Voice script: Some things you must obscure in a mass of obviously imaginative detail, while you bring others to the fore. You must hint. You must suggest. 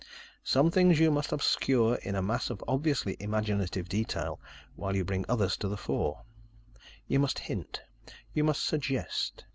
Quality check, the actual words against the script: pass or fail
pass